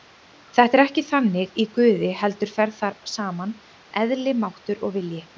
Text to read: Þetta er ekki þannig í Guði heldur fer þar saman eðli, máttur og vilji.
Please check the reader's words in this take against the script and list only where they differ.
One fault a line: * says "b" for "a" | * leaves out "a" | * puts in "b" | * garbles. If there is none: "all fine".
all fine